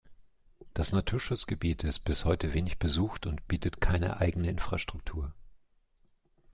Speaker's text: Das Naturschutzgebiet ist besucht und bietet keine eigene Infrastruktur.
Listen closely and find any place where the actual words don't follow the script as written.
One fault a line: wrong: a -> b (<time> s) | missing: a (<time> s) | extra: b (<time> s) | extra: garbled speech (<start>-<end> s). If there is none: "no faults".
extra: bis heute wenig (2.0 s)